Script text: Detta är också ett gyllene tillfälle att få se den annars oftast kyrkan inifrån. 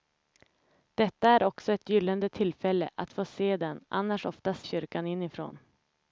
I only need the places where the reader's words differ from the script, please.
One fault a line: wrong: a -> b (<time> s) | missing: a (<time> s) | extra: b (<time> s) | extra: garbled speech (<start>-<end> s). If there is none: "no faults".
no faults